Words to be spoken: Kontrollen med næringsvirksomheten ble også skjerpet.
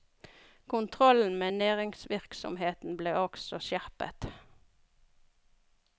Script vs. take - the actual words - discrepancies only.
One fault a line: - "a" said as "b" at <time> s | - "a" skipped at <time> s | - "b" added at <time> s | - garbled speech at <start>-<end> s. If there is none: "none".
none